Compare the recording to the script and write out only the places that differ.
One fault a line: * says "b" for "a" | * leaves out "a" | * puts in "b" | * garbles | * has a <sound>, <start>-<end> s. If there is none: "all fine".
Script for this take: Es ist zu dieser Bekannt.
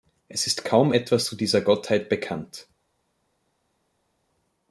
* puts in "kaum etwas"
* puts in "Gottheit"